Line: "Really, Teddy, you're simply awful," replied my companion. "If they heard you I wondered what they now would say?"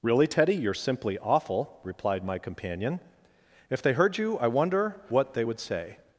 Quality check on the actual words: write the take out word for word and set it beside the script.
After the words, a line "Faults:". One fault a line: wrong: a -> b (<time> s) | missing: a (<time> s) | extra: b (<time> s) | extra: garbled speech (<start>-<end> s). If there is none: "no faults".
"Really, Teddy, you're simply awful," replied my companion. "If they heard you I wonder what they would say?"
Faults:
wrong: wondered -> wonder (4.5 s)
missing: now (5.5 s)